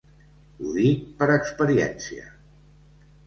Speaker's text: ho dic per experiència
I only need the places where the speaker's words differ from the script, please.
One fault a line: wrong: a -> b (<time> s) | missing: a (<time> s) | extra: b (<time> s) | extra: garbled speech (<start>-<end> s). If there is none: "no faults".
no faults